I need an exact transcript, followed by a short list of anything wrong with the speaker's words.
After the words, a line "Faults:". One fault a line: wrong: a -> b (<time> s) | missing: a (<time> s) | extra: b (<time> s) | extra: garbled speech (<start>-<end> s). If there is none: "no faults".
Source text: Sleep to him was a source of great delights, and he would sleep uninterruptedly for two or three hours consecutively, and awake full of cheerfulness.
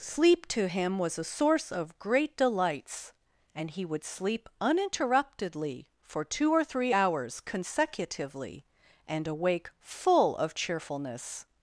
Sleep to him was a source of great delights, and he would sleep uninterruptedly for two or three hours consecutively, and awake full of cheerfulness.
Faults:
no faults